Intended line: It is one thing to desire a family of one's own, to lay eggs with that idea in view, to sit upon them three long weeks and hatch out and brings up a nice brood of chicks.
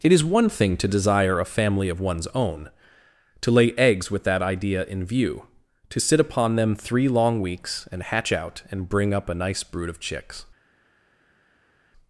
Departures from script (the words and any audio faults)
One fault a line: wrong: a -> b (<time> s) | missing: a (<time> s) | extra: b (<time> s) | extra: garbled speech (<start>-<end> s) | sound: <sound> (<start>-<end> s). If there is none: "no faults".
wrong: brings -> bring (8.9 s)